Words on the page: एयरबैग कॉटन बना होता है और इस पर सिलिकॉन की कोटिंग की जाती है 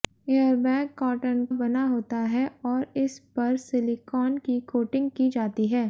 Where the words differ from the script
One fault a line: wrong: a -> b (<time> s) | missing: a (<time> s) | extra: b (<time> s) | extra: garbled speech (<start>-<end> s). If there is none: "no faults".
no faults